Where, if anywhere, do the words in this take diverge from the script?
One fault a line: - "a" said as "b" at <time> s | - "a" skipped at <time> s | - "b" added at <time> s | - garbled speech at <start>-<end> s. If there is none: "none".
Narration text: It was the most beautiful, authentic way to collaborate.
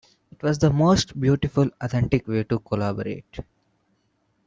none